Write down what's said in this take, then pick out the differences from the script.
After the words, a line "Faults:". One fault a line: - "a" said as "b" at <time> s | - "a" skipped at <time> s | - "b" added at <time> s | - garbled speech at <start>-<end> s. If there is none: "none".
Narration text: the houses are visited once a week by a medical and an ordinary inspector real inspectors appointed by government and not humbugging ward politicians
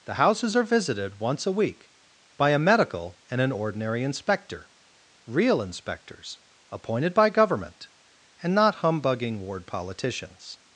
the houses are visited once a week by a medical and an ordinary inspector real inspectors appointed by government and not humbugging ward politicians
Faults:
none